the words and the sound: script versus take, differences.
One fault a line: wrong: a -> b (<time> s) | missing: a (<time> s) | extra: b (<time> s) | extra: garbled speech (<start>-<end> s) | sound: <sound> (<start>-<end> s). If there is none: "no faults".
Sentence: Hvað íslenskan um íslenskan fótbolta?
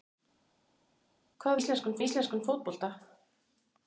no faults